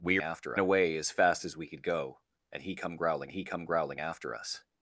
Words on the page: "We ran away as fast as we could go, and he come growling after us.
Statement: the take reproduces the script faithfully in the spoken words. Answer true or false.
false